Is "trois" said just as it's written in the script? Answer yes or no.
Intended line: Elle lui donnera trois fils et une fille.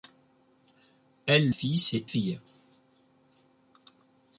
no